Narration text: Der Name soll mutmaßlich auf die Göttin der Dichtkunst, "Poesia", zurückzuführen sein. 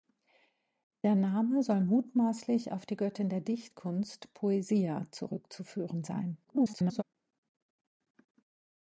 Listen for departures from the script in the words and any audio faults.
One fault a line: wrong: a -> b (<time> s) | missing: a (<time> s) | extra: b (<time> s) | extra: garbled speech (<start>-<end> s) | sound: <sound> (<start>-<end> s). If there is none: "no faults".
extra: garbled speech (6.4-7.0 s)